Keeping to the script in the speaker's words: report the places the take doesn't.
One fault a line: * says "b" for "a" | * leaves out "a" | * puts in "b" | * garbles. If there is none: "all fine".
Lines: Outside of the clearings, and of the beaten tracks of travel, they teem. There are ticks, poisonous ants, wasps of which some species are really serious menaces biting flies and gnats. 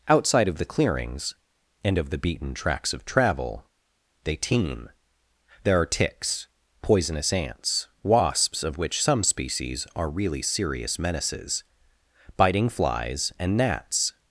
all fine